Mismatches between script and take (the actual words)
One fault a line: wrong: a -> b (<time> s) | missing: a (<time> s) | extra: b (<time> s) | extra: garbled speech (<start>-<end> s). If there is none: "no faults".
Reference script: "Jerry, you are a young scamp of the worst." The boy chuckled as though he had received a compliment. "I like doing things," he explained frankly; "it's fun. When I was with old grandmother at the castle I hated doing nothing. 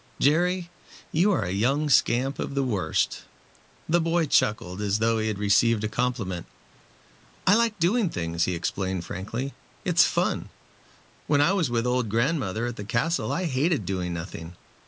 no faults